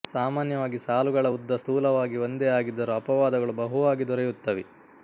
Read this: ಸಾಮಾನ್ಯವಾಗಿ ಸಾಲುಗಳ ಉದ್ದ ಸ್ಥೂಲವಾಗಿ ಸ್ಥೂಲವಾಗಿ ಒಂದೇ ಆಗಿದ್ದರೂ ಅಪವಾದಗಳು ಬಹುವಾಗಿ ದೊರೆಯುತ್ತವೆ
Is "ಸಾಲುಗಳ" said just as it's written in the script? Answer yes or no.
yes